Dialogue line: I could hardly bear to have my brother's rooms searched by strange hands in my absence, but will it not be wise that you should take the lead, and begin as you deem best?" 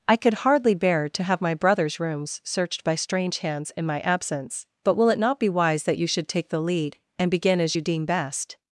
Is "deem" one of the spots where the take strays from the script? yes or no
no